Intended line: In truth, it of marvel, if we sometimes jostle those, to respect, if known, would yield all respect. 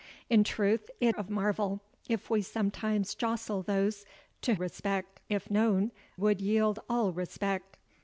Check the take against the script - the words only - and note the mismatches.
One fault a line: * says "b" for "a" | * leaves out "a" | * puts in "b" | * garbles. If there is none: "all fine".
all fine